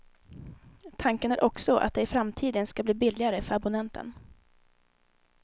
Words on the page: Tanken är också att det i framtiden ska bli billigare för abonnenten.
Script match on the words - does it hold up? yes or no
yes